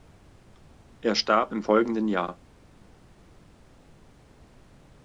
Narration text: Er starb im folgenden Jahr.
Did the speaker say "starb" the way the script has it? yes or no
yes